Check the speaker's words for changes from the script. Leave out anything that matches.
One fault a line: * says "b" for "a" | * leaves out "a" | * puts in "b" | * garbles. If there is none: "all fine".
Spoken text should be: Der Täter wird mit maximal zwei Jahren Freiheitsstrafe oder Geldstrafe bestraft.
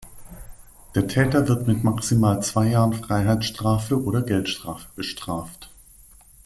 all fine